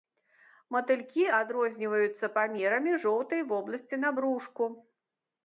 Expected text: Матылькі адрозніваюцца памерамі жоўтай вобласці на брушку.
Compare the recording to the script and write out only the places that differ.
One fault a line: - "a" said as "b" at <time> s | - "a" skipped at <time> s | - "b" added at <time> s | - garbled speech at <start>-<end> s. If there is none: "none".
none